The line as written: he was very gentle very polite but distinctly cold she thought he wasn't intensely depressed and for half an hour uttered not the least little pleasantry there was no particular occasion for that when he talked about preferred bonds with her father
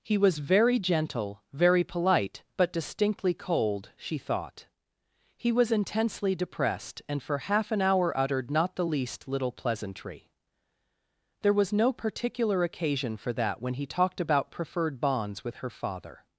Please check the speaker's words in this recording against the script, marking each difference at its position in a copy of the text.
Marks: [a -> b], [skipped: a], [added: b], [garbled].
he was very gentle very polite but distinctly cold she thought he [wasn't -> was] intensely depressed and for half an hour uttered not the least little pleasantry there was no particular occasion for that when he talked about preferred bonds with her father